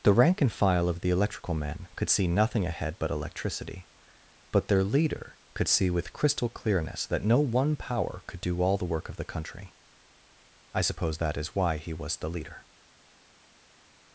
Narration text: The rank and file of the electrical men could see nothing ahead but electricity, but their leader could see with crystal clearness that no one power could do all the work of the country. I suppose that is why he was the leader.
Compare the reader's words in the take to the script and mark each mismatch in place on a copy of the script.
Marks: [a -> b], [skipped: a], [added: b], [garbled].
The rank and file of the electrical men could see nothing ahead but electricity, but their leader could see with crystal clearness that no one power could do all the work of the country. I suppose that is why he was the leader.